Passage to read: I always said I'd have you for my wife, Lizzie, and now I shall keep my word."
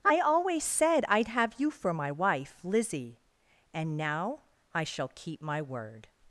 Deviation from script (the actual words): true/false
false